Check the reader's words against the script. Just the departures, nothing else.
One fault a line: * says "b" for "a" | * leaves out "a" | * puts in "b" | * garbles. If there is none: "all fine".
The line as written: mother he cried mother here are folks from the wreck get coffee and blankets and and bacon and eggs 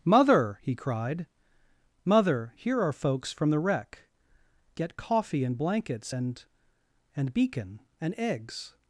* says "beacon" for "bacon"